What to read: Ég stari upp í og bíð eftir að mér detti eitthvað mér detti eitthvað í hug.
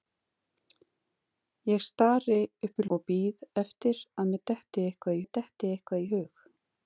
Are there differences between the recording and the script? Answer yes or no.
no